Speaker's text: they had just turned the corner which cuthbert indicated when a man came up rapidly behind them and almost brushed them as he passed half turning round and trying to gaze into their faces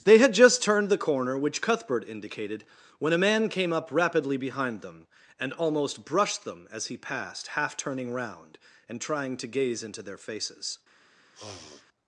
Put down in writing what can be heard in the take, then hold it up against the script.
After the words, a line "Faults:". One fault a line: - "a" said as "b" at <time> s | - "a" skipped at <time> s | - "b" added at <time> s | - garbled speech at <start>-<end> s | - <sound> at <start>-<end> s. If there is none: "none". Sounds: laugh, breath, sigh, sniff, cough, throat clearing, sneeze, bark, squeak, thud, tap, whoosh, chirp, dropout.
they had just turned the corner which cuthbert indicated when a man came up rapidly behind them and almost brushed them as he passed half turning round and trying to gaze into their faces
Faults:
- sniff at 11.3-11.9 s